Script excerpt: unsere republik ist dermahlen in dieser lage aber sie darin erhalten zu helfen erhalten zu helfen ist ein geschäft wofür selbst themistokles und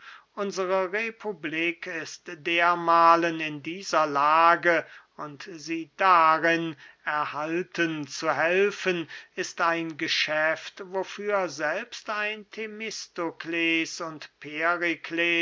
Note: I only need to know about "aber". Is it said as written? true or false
false